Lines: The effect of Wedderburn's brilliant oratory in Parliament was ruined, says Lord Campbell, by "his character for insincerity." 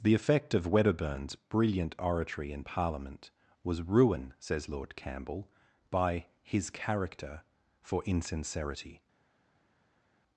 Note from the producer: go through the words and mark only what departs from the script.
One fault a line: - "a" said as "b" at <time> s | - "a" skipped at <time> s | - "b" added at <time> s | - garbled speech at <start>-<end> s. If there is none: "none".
- "ruined" said as "ruin" at 3.8 s